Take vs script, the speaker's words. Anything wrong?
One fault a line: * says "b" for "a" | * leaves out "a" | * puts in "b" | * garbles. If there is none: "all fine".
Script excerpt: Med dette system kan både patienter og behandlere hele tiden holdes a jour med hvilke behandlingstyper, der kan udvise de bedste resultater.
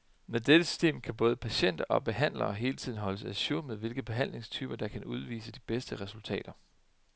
all fine